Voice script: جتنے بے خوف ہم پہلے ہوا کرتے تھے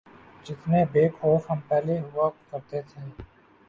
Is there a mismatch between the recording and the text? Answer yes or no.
no